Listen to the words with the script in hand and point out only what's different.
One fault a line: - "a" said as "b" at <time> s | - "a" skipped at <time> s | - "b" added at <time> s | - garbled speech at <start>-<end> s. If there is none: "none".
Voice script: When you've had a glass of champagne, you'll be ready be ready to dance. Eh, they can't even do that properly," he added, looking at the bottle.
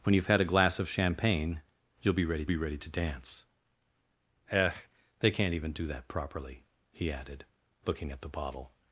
none